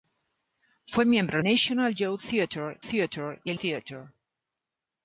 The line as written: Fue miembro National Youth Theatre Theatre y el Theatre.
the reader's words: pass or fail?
pass